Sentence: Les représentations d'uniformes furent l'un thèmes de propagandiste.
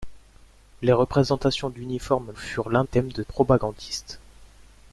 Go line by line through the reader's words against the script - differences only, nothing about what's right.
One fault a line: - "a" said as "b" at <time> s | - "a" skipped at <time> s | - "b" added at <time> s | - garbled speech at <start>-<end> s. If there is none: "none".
none